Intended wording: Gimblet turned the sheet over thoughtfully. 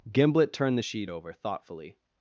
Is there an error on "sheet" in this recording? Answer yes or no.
no